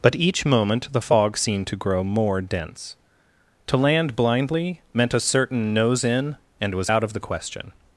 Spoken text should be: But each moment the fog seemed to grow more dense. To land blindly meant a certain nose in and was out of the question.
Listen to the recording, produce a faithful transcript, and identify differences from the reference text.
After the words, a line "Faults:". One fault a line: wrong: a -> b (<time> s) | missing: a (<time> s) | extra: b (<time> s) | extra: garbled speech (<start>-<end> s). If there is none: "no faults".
But each moment the fog seemed to grow more dense. To land blindly meant a certain nose in and was out of the question.
Faults:
no faults